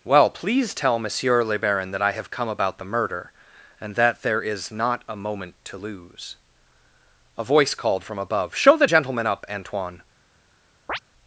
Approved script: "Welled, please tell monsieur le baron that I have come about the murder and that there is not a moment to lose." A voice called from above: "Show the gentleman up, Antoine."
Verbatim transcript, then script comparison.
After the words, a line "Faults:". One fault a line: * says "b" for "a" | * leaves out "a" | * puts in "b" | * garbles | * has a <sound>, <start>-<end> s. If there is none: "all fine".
"Well, please tell monsieur le baron that I have come about the murder and that there is not a moment to lose." A voice called from above: "Show the gentleman up, Antoine."
Faults:
* says "Well" for "Welled"
* has a chirp, 10.9-11.0 s